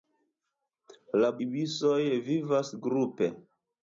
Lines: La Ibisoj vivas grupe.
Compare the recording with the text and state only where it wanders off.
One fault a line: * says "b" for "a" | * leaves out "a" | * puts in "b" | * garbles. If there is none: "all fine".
all fine